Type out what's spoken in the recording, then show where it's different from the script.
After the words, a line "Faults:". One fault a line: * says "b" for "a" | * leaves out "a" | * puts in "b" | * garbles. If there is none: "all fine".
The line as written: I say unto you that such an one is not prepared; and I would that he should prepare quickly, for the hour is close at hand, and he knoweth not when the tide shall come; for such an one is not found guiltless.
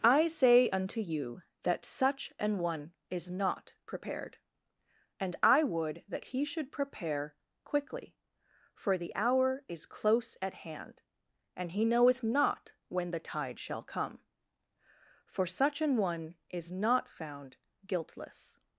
I say unto you that such an one is not prepared; and I would that he should prepare quickly, for the hour is close at hand, and he knoweth not when the tide shall come; for such an one is not found guiltless.
Faults:
all fine